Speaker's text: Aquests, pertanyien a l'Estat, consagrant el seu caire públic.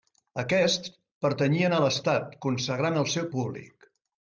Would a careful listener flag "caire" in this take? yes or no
yes